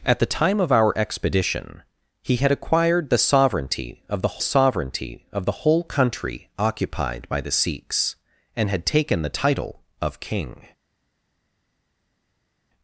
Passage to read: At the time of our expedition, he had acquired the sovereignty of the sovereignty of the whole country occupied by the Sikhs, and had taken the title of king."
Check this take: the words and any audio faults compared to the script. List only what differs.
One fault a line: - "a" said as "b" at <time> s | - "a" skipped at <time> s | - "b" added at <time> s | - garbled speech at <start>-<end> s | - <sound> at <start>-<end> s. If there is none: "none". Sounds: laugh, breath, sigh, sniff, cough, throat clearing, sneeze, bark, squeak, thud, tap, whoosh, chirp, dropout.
none